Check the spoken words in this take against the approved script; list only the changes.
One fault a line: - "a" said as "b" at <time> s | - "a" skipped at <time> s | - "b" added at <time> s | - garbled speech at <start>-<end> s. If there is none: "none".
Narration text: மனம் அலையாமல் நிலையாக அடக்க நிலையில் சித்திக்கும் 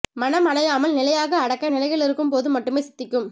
- "இருக்கும் போது மட்டுமே" added at 2.0 s